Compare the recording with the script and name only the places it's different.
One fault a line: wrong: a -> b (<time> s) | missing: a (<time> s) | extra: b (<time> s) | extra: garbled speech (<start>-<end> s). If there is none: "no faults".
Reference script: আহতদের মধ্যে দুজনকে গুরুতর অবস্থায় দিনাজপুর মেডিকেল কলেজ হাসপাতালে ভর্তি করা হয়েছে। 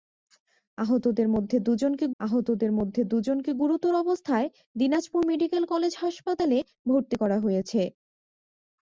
extra: আহতদের মধ্যে দুজনকে (2.2 s)